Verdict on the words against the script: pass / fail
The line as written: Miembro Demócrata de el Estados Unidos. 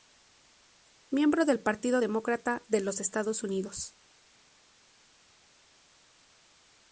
fail